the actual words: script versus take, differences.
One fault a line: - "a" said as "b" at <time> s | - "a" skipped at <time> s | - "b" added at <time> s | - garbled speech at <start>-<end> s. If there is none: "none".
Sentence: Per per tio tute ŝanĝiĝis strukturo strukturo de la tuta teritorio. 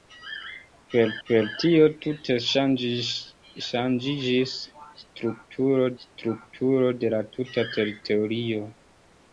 none